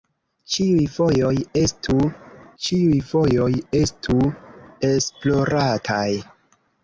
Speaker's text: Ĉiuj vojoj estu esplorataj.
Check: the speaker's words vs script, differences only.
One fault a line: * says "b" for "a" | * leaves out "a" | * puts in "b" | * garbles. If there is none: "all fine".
* puts in "ĉiuj vojoj estu"